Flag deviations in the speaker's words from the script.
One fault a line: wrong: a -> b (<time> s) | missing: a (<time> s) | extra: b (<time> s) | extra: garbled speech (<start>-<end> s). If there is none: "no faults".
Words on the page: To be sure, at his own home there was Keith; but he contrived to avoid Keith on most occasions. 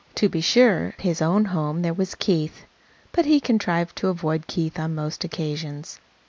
missing: at (0.9 s)